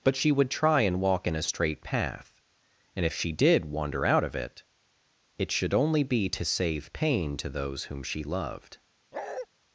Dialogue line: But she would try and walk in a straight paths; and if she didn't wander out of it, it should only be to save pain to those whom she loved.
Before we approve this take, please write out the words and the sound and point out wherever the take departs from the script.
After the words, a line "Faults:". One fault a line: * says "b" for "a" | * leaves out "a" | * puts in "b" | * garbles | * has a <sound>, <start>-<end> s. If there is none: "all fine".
But she would try and walk in a straight path; and if she did wander out of it, it should only be to save pain to those whom she loved.
Faults:
* says "path" for "paths"
* says "did" for "didn't"
* has a bark, 9.1-9.5 s